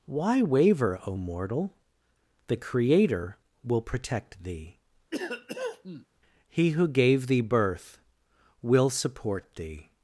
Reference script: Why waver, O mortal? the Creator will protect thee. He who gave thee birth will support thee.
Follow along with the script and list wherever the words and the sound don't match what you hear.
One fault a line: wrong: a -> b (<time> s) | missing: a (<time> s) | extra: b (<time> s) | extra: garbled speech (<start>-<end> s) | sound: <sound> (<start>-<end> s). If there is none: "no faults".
sound: cough (5.1-6.1 s)